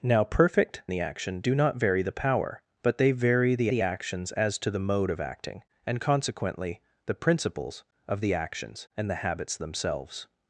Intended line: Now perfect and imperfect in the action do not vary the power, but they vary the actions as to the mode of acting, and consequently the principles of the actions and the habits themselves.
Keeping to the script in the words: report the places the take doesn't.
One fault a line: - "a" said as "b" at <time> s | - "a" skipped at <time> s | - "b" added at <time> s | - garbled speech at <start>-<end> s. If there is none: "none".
- "and imperfect in" skipped at 0.8 s
- "the" added at 3.7 s